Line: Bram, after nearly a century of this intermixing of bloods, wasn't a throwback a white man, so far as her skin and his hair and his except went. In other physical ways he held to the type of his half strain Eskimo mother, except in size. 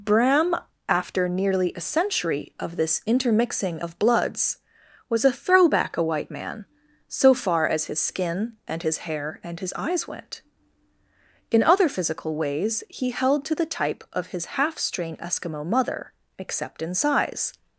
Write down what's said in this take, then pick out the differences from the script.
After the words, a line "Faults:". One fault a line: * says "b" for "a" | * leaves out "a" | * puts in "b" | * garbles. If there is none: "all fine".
Bram, after nearly a century of this intermixing of bloods, was a throwback a white man, so far as his skin and his hair and his eyes went. In other physical ways he held to the type of his half strain Eskimo mother, except in size.
Faults:
* says "was" for "wasn't"
* says "his" for "her"
* says "eyes" for "except"